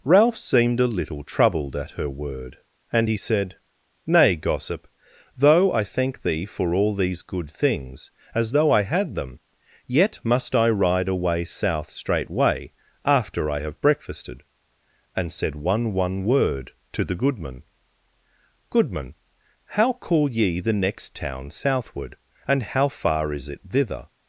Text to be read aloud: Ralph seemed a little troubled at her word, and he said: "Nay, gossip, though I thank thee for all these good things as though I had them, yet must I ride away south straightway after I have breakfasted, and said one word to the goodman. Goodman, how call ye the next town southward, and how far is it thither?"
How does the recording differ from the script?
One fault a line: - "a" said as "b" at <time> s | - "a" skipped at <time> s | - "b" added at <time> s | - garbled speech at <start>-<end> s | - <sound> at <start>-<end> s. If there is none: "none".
- "one" added at 15.9 s